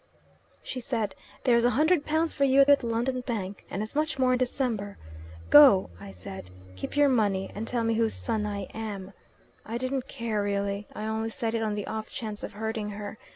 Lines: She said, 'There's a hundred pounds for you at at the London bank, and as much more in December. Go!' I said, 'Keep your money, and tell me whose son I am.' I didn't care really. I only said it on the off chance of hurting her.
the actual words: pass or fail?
pass